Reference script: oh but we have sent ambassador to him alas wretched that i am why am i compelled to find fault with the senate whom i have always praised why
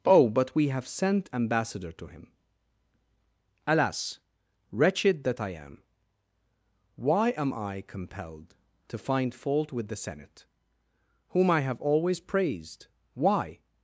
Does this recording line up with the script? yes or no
yes